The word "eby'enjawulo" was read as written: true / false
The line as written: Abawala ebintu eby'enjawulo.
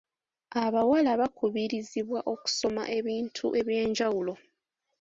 true